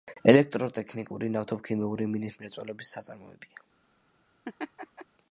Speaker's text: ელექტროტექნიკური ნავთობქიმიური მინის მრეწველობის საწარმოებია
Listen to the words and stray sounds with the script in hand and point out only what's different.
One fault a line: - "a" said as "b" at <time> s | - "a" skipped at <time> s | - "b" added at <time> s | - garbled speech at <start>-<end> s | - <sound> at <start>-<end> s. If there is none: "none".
- laugh at 4.4-5.1 s